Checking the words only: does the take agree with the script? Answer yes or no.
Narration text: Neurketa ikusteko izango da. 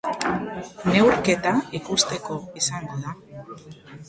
yes